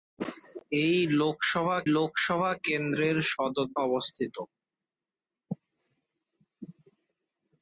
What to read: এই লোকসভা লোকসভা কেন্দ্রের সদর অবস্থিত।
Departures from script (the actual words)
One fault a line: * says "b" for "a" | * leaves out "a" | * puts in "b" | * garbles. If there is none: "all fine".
all fine